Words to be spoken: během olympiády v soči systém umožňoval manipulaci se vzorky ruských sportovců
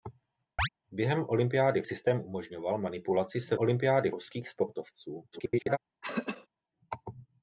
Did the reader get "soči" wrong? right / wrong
wrong